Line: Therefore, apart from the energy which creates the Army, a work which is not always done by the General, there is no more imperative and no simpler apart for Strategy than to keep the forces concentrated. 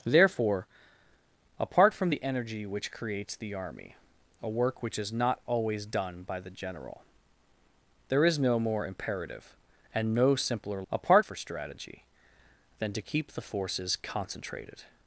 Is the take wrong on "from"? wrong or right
right